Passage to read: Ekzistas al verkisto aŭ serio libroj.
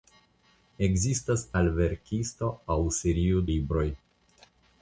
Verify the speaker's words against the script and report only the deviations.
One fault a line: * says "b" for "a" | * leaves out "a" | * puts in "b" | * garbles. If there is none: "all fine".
all fine